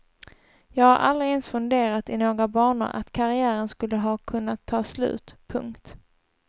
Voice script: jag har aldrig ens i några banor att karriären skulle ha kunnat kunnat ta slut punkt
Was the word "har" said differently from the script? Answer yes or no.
no